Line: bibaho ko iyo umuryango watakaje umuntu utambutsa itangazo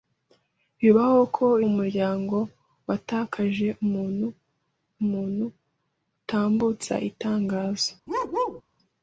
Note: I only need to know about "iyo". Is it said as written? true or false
false